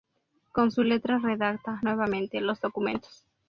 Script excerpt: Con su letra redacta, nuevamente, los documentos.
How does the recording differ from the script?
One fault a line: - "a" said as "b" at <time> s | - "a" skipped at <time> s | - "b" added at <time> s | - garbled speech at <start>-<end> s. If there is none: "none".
none